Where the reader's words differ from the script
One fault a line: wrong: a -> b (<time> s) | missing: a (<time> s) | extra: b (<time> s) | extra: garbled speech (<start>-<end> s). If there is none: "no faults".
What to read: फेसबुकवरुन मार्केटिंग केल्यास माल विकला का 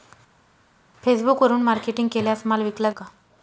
no faults